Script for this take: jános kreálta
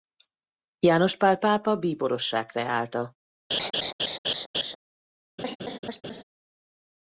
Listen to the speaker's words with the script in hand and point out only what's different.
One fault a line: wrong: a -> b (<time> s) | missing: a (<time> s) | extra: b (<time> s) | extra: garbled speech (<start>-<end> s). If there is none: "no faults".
extra: pál pápa bíborossá (1.2 s)